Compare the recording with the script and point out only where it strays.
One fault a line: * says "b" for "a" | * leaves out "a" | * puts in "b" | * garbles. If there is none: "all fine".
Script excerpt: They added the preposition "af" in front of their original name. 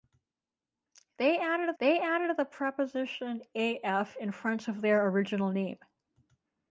* puts in "they added"